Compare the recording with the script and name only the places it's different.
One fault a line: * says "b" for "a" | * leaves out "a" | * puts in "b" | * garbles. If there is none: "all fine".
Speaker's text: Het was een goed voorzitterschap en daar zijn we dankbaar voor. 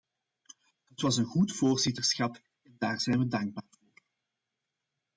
all fine